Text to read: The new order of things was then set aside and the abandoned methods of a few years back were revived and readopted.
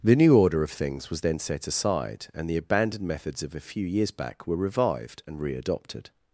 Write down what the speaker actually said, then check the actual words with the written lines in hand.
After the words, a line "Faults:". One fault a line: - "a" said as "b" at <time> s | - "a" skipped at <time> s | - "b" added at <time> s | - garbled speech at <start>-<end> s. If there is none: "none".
The new order of things was then set aside and the abandoned methods of a few years back were revived and readopted.
Faults:
none